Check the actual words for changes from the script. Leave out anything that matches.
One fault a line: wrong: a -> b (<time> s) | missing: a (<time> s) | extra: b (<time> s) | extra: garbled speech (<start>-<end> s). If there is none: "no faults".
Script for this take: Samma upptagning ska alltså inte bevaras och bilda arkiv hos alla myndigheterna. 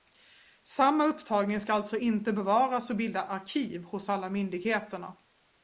no faults